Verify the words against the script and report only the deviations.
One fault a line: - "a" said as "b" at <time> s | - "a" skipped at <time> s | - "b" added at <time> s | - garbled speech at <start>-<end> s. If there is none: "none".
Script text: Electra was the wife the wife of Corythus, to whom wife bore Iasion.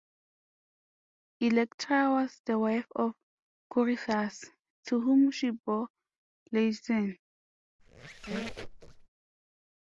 - "the wife" skipped at 2.9 s
- "wife" said as "she" at 5.3 s